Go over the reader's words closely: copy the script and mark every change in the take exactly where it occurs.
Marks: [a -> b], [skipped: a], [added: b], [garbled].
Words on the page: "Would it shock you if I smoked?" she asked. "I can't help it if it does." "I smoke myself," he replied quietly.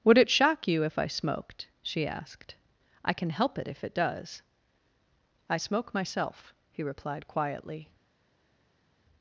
"Would it shock you if I smoked?" she asked. "I [can't -> can] help it if it does." "I smoke myself," he replied quietly.